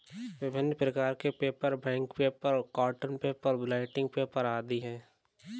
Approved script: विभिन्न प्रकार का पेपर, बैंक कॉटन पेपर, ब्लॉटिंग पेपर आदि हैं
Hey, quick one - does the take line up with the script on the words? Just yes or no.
no